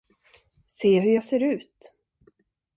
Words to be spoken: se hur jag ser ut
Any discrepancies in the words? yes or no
no